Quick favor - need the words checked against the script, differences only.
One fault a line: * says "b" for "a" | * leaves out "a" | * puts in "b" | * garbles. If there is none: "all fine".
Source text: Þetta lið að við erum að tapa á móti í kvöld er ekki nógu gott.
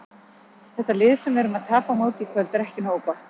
* says "sem" for "að"